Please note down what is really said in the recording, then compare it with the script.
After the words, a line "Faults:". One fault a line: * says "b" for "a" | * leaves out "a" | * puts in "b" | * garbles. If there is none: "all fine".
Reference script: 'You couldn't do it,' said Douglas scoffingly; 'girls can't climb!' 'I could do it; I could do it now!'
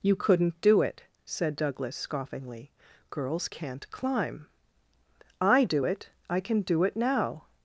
'You couldn't do it,' said Douglas scoffingly; 'girls can't climb!' 'I do it; I can do it now!'
Faults:
* leaves out "could"
* says "can" for "could"